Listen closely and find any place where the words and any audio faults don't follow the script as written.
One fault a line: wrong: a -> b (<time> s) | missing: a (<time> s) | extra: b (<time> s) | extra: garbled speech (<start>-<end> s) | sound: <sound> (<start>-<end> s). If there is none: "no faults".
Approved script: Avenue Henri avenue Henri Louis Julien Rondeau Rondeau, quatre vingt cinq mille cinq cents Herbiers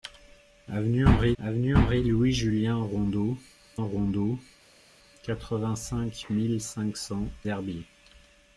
no faults